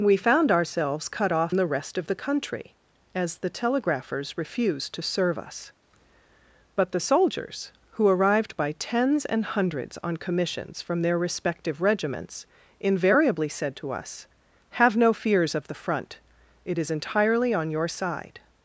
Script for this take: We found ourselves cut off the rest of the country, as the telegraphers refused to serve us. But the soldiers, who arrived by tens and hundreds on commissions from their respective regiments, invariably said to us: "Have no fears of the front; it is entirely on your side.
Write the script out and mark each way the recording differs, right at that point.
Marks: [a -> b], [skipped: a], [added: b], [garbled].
We found ourselves cut off the rest of the country, as the telegraphers refused to serve us. But the soldiers, who arrived by tens and hundreds on commissions from their respective regiments, invariably said to us: "Have no fears of the front; it is entirely on your side.